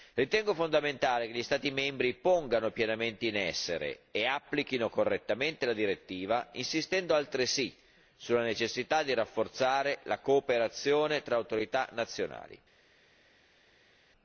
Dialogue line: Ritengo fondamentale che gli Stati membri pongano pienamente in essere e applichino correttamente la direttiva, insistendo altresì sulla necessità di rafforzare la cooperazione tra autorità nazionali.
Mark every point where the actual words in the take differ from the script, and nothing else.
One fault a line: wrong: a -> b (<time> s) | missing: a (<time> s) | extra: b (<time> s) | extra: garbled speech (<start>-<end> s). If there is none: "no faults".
no faults